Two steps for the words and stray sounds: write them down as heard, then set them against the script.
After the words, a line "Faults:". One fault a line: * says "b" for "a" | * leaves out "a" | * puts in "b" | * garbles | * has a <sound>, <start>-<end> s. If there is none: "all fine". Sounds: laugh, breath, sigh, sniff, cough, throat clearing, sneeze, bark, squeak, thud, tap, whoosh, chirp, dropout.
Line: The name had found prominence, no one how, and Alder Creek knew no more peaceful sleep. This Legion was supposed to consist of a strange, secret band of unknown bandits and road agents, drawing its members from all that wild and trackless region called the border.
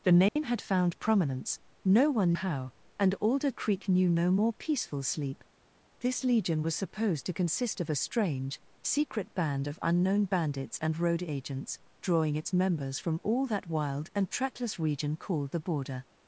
The name had found prominence, no one how, and Alder Creek knew no more peaceful sleep. This Legion was supposed to consist of a strange, secret band of unknown bandits and road agents, drawing its members from all that wild and trackless region called the border.
Faults:
* has a dropout, 0.3-0.4 s